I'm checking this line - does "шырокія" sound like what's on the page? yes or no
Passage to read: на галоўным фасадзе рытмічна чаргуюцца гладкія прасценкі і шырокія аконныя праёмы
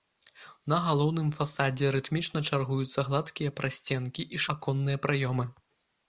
no